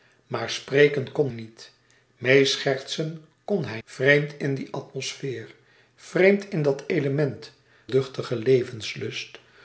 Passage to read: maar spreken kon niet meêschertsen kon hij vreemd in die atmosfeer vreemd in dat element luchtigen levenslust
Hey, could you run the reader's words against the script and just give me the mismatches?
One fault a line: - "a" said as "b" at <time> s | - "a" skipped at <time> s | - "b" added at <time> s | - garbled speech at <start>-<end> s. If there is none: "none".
none